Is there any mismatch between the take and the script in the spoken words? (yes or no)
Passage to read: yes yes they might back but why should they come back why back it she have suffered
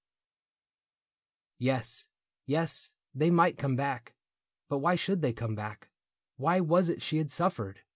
yes